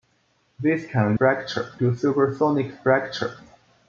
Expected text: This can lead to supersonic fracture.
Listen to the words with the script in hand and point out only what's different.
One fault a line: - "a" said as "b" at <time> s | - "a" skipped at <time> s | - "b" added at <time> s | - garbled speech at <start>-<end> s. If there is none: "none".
- "lead" said as "fracture" at 1.2 s